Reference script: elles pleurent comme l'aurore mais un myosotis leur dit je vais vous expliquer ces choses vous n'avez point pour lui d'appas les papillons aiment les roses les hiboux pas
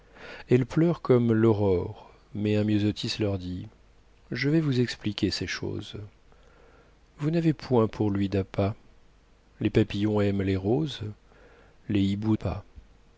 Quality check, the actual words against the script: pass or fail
pass